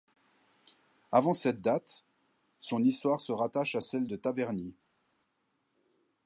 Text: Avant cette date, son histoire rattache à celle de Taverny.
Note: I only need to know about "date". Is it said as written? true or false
true